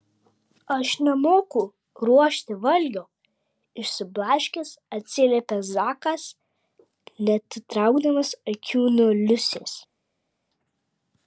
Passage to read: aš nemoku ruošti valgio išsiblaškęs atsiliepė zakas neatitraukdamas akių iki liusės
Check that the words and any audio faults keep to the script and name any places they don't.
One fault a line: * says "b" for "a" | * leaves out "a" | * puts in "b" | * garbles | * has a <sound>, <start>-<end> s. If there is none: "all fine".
* says "nuo" for "iki"